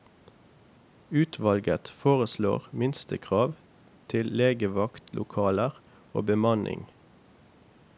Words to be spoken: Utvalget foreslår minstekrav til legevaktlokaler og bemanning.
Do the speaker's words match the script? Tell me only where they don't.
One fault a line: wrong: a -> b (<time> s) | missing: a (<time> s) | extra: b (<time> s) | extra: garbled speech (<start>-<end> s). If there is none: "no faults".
no faults